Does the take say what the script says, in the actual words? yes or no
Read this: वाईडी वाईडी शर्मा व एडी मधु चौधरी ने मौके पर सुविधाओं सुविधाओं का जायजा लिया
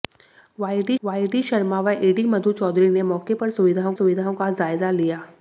yes